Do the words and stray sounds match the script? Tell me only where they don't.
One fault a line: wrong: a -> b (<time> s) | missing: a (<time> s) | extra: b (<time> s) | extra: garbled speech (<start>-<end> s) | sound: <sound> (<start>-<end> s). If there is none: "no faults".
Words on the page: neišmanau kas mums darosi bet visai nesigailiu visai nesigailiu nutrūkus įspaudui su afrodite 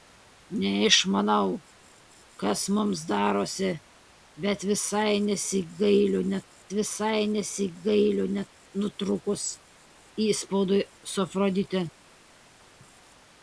no faults